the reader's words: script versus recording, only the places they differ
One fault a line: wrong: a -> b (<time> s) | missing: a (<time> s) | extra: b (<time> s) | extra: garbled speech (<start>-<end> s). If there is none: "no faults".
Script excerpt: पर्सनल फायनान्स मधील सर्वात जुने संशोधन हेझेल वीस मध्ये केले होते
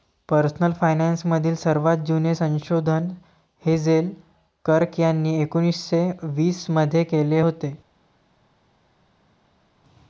extra: कर्क यांनी एकोन्निस्से (4.6 s)